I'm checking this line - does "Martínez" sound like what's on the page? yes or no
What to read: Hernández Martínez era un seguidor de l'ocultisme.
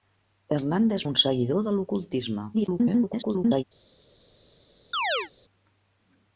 no